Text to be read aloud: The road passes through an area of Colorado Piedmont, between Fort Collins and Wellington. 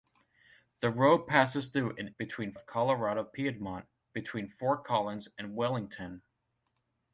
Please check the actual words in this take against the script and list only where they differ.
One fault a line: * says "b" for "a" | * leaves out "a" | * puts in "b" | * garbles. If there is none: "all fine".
* says "between" for "area"